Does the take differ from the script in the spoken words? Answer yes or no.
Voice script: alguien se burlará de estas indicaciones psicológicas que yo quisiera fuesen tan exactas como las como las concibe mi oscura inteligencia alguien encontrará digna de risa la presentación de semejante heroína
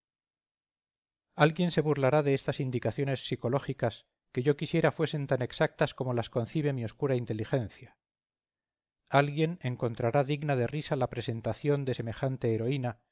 yes